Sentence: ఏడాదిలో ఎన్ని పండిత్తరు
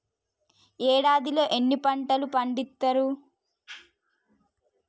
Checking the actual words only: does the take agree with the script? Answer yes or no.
no